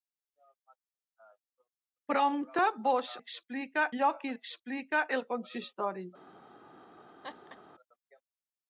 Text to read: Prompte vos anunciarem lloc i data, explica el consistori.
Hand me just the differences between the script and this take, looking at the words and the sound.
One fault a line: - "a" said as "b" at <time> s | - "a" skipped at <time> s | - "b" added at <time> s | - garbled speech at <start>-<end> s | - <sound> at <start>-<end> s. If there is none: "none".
- "anunciarem" said as "explica" at 3.2 s
- "data" skipped at 4.3 s
- laugh at 7.2-7.6 s